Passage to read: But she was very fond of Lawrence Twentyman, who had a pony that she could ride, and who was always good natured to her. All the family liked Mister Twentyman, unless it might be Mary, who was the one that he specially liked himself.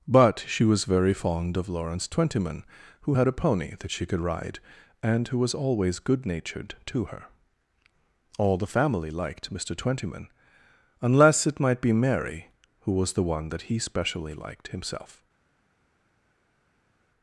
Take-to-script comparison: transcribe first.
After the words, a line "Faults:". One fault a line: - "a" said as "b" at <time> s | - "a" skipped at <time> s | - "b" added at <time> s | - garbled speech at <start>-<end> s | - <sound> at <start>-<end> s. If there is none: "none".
But she was very fond of Lawrence Twentyman, who had a pony that she could ride, and who was always good natured to her. All the family liked Mister Twentyman, unless it might be Mary, who was the one that he specially liked himself.
Faults:
none